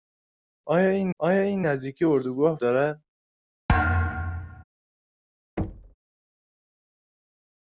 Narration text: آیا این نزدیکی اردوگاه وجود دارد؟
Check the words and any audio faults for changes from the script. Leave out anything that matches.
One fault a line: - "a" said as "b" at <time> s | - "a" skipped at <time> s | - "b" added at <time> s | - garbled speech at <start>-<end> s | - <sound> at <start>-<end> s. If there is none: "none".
- "آیا این" added at 1.2 s
- "وجود" skipped at 2.6 s
- thud at 3.7-4.6 s
- thud at 5.6-5.9 s